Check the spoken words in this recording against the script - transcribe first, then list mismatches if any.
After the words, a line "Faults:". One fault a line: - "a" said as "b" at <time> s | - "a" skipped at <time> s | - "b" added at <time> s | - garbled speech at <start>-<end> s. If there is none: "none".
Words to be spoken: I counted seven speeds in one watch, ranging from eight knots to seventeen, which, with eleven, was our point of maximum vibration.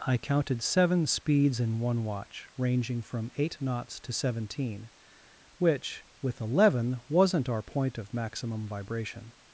I counted seven speeds in one watch, ranging from eight knots to seventeen, which, with eleven, wasn't our point of maximum vibration.
Faults:
- "was" said as "wasn't" at 7.1 s